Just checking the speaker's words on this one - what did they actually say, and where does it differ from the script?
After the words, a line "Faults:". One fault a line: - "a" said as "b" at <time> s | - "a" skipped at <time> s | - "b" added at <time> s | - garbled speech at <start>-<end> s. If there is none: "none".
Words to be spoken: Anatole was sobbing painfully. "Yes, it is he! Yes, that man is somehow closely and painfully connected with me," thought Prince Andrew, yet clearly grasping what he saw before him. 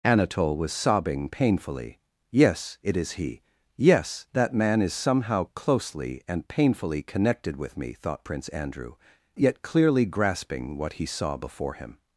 Anatole was sobbing painfully. "Yes, it is he! Yes, that man is somehow closely and painfully connected with me," thought Prince Andrew, yet clearly grasping what he saw before him.
Faults:
none